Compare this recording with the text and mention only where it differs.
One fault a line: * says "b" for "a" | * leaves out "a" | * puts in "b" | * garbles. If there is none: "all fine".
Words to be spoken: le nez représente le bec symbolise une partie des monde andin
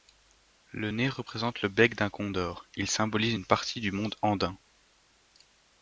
* puts in "d'un condor il"
* says "du" for "des"